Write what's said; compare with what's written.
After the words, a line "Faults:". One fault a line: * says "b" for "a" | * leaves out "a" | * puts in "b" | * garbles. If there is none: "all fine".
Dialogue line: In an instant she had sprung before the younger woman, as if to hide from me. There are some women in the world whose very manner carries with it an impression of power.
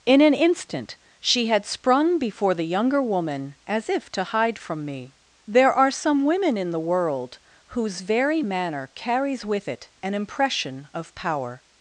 In an instant she had sprung before the younger woman, as if to hide from me. There are some women in the world whose very manner carries with it an impression of power.
Faults:
all fine